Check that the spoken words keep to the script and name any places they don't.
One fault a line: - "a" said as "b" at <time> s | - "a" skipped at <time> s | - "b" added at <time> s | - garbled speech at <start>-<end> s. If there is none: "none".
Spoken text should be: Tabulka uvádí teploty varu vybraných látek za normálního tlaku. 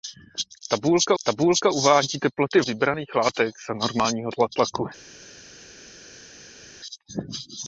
- "tabulka" added at 1.2 s
- "varu" skipped at 2.6 s